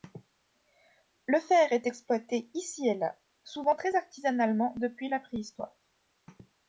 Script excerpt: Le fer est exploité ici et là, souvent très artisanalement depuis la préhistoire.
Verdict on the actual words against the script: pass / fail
pass